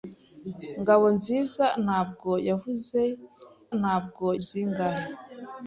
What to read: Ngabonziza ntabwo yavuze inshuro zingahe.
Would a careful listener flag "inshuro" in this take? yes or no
yes